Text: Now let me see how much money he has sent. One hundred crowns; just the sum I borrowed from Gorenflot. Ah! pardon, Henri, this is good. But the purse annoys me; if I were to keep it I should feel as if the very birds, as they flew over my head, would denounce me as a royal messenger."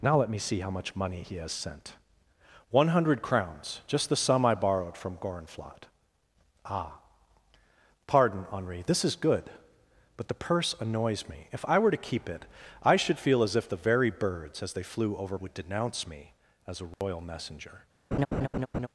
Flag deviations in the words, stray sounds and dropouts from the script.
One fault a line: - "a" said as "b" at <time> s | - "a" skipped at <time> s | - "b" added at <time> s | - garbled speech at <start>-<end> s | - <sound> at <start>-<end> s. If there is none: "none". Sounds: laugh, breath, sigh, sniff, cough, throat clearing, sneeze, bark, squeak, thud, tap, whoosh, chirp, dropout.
- "my head" skipped at 15.4 s
- dropout at 16.9-17.0 s
- laugh at 18.1-18.9 s